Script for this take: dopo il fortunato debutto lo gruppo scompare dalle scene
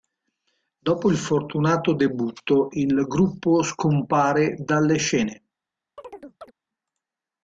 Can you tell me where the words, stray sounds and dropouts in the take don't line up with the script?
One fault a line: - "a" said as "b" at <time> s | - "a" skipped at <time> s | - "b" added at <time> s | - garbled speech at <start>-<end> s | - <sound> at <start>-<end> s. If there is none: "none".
- "lo" said as "il" at 2.7 s
- chirp at 6.0-6.5 s